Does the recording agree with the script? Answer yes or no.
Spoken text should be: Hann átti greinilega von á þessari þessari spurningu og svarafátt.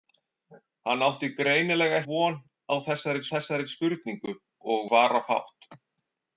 yes